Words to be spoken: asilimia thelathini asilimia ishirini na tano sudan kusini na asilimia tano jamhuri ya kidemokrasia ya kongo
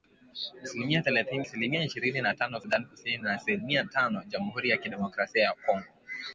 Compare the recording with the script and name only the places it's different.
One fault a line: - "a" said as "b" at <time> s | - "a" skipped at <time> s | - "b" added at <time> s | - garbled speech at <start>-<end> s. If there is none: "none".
none